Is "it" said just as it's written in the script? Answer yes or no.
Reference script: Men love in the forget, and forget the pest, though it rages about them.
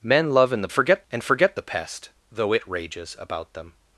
yes